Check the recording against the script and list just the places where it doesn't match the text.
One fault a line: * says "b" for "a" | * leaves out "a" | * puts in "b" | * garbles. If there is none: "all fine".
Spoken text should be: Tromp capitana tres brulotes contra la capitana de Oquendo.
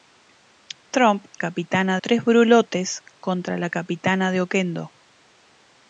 all fine